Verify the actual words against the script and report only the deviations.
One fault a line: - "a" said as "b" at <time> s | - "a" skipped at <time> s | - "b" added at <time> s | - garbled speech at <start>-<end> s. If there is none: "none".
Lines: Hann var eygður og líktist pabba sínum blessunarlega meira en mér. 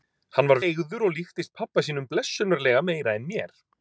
none